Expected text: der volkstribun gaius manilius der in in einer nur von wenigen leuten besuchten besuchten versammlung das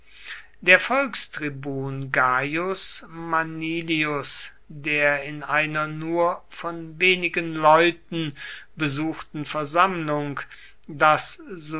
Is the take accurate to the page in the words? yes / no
no